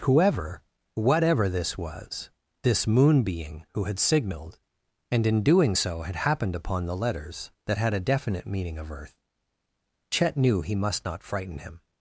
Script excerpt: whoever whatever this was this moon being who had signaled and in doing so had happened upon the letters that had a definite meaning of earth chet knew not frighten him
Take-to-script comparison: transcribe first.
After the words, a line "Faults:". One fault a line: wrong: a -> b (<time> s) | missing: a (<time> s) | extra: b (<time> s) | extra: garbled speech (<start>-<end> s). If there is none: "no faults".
whoever whatever this was this moon being who had signaled and in doing so had happened upon the letters that had a definite meaning of earth chet knew he must not frighten him
Faults:
extra: he must (10.6 s)